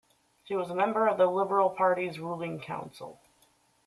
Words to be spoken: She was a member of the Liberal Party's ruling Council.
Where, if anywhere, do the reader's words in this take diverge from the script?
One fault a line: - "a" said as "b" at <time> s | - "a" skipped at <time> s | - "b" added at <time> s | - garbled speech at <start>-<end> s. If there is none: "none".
none